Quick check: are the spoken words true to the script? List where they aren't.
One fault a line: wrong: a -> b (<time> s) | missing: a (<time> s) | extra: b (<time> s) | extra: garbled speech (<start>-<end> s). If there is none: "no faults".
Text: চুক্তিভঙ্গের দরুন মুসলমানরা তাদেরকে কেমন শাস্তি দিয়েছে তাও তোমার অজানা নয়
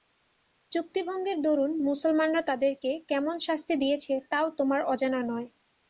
no faults